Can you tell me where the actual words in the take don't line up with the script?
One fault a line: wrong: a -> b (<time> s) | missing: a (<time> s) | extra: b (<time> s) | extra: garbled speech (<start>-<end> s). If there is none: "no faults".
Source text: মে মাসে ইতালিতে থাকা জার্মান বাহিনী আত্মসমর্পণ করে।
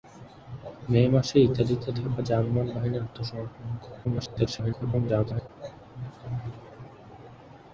extra: garbled speech (4.0-5.5 s)